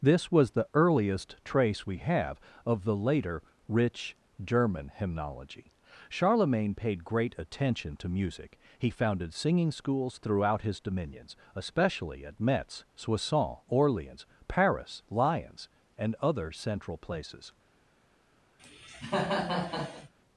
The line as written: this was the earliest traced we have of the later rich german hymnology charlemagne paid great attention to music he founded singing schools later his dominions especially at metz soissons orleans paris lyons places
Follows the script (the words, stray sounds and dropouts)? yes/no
no